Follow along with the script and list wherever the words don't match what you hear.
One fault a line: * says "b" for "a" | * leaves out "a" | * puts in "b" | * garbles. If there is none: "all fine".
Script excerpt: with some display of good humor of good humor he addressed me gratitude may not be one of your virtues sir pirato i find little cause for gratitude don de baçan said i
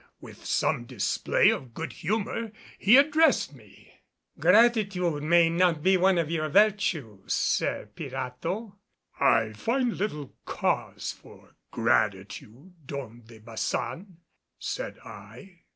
* leaves out "of good humor"